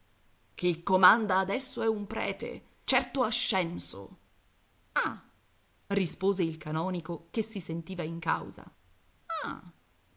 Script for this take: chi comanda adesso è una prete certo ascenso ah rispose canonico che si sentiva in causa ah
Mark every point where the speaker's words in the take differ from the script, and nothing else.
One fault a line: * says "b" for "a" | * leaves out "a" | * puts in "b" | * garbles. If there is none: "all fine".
* says "un" for "una"
* puts in "il"